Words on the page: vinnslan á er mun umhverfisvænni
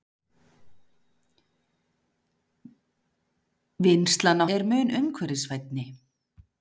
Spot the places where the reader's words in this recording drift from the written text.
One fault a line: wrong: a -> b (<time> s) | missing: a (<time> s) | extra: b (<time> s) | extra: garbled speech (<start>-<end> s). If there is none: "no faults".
no faults